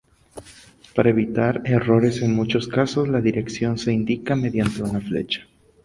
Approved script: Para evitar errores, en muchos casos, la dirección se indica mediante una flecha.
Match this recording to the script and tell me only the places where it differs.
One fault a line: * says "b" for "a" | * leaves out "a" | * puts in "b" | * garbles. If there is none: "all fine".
all fine